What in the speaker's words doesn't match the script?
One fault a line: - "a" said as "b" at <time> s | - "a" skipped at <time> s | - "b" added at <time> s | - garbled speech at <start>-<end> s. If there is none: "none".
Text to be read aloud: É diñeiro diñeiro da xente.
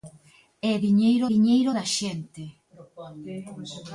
none